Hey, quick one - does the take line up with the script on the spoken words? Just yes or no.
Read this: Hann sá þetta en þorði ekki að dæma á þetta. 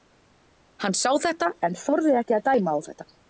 yes